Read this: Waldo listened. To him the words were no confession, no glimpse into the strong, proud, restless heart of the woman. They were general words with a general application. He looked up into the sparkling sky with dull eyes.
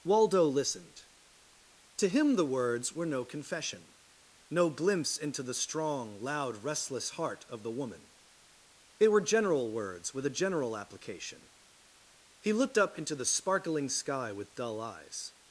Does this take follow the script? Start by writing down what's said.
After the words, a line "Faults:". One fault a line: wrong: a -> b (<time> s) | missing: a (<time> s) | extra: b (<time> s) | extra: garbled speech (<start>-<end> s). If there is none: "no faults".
Waldo listened. To him the words were no confession, no glimpse into the strong, loud, restless heart of the woman. They were general words with a general application. He looked up into the sparkling sky with dull eyes.
Faults:
wrong: proud -> loud (6.2 s)